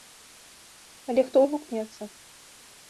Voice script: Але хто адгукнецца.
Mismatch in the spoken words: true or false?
false